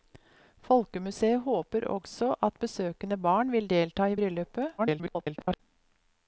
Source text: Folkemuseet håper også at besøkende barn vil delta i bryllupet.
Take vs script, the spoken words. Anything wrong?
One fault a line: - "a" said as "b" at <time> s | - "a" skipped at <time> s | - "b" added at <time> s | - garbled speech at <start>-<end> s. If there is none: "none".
- garbled speech at 4.8-5.6 s